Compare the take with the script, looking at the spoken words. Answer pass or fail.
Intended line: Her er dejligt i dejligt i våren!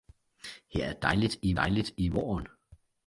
pass